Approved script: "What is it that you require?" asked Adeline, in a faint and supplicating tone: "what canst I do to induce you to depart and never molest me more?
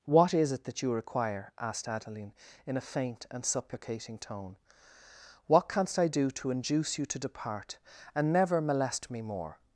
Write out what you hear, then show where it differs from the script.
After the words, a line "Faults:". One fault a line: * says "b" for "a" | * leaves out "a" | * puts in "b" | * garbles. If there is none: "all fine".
"What is it that you require?" asked Adeline, in a faint and supplicating tone: "what canst I do to induce you to depart and never molest me more?
Faults:
all fine